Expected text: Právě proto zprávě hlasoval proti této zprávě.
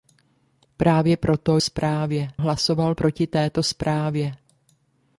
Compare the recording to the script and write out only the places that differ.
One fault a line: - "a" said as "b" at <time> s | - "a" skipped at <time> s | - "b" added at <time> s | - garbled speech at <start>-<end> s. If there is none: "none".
none